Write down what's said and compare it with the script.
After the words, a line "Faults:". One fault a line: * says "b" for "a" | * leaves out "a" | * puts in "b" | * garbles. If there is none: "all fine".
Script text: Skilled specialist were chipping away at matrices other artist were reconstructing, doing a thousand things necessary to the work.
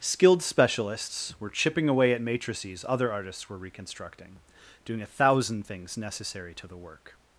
Skilled specialists were chipping away at matrices other artists were reconstructing, doing a thousand things necessary to the work.
Faults:
* says "specialists" for "specialist"
* says "artists" for "artist"